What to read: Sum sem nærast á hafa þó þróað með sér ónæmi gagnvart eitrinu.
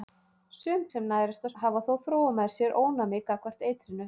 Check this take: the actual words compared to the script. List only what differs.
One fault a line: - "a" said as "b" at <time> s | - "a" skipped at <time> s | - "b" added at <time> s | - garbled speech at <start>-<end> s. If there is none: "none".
none